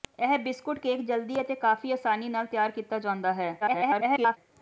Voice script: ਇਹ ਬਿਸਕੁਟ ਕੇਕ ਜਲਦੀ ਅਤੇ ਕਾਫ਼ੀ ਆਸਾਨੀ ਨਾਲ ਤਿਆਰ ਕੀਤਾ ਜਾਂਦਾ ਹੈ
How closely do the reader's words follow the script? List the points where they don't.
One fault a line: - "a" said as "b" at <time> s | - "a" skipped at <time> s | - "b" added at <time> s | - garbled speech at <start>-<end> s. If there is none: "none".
- garbled speech at 3.6-4.4 s